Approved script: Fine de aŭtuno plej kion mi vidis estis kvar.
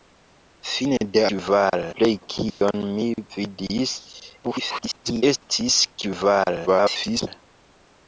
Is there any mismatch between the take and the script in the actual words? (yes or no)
yes